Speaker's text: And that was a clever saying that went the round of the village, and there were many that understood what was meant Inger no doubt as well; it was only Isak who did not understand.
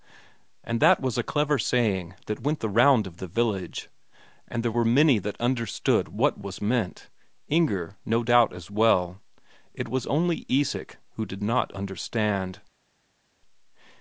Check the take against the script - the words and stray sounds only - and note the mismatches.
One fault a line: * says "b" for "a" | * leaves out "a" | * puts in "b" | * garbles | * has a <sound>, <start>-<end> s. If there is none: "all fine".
all fine